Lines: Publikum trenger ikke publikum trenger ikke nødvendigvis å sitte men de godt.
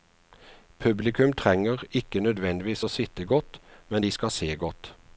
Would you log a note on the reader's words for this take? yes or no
yes